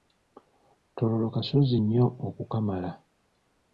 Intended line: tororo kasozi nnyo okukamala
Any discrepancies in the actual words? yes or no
no